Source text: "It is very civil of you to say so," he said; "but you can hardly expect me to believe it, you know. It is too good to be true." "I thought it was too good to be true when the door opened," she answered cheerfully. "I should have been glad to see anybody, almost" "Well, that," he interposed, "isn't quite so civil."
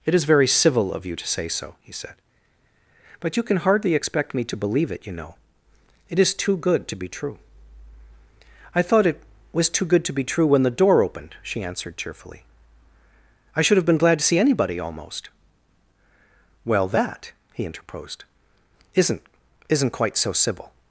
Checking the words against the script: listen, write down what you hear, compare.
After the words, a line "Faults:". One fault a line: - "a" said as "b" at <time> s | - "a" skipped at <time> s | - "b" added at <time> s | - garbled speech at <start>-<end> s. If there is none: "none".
"It is very civil of you to say so," he said; "but you can hardly expect me to believe it, you know. It is too good to be true." "I thought it was too good to be true when the door opened," she answered cheerfully. "I should have been glad to see anybody, almost" "Well, that," he interposed, "isn't isn't quite so civil."
Faults:
- "isn't" added at 19.7 s